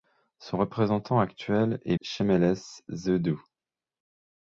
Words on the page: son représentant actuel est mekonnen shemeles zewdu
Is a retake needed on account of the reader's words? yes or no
yes